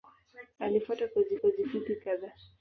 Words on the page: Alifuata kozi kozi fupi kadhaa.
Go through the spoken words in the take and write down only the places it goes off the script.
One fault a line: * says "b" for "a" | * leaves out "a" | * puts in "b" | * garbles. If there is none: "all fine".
all fine